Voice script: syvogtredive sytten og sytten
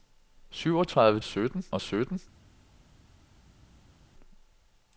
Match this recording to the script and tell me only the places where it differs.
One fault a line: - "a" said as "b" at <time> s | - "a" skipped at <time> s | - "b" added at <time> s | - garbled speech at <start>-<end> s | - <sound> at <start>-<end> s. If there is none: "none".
none